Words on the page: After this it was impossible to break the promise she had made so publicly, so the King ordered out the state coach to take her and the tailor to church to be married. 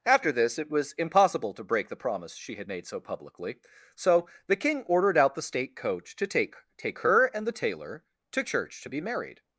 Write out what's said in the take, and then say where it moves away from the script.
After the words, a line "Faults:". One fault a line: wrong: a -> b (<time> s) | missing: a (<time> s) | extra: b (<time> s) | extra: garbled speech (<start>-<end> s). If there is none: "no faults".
After this it was impossible to break the promise she had made so publicly, so the King ordered out the state coach to take take her and the tailor to church to be married.
Faults:
extra: take (6.8 s)